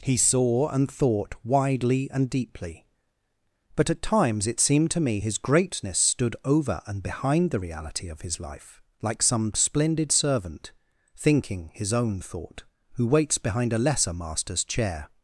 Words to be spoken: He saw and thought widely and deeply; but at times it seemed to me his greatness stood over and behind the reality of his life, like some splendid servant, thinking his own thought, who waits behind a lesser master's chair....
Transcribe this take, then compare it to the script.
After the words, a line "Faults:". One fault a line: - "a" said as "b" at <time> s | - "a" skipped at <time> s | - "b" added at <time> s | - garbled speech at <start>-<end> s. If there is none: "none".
He saw and thought widely and deeply; but at times it seemed to me his greatness stood over and behind the reality of his life, like some splendid servant, thinking his own thought, who waits behind a lesser master's chair....
Faults:
none